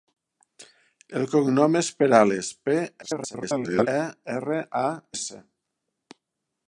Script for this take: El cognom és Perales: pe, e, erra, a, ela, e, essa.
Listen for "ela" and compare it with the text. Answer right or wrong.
wrong